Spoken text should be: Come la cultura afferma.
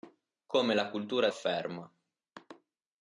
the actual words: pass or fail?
pass